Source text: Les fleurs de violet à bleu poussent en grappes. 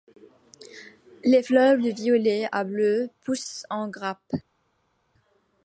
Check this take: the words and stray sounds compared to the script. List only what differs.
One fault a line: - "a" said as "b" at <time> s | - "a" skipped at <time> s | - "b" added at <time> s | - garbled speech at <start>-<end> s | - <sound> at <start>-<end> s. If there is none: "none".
none